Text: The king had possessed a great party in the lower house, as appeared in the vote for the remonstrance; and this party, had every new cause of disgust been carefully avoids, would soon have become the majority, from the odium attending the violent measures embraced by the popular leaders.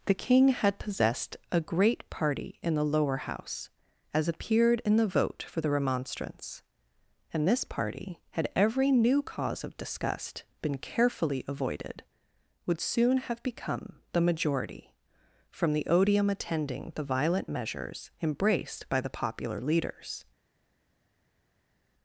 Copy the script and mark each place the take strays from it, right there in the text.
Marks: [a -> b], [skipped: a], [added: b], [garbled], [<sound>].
The king had possessed a great party in the lower house, as appeared in the vote for the remonstrance; and this party, had every new cause of disgust been carefully [avoids, -> avoided] would soon have become the majority, from the odium attending the violent measures embraced by the popular leaders.